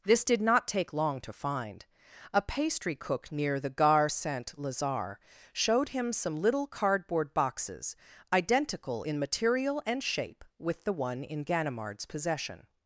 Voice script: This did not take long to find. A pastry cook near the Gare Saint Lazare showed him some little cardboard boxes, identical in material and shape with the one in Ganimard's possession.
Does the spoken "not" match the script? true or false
true